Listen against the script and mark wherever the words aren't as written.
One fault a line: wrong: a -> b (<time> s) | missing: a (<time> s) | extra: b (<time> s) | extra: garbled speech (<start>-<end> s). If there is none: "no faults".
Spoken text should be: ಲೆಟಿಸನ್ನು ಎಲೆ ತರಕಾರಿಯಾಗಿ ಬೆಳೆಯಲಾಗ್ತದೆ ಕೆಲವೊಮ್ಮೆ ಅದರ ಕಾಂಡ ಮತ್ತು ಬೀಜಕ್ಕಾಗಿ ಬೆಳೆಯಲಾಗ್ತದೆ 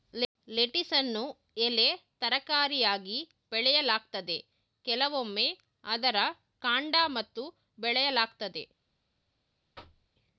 missing: ಬೀಜಕ್ಕಾಗಿ (7.4 s)